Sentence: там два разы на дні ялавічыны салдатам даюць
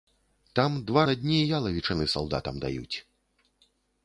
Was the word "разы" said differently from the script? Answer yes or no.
yes